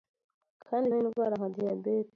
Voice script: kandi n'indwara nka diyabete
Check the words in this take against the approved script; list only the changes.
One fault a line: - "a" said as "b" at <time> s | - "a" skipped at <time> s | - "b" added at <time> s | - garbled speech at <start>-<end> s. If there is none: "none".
none